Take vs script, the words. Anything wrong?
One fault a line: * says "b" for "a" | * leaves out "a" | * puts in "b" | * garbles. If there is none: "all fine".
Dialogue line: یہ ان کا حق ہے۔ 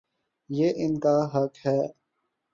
all fine